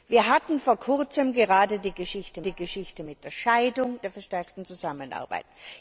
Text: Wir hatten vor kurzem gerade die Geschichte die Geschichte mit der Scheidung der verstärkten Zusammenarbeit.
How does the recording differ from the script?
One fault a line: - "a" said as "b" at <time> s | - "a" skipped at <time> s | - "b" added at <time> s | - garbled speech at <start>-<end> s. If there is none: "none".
none